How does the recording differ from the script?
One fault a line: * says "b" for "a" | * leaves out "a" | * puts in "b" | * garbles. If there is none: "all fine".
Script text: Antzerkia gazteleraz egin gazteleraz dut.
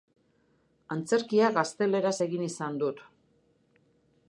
* says "izan" for "gazteleraz"